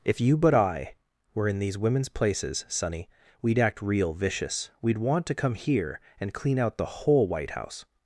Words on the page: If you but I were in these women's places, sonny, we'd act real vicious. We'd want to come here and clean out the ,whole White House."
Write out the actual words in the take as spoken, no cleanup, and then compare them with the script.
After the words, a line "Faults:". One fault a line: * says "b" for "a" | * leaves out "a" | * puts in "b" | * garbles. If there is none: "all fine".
If you but I were in these women's places, sonny, we'd act real vicious. We'd want to come here and clean out the ,whole White House."
Faults:
all fine